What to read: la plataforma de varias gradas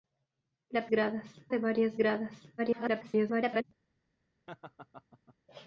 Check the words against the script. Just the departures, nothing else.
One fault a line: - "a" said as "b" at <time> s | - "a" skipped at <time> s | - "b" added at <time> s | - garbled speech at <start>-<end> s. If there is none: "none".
- "plataforma" said as "gradas" at 0.9 s
- garbled speech at 2.6-3.6 s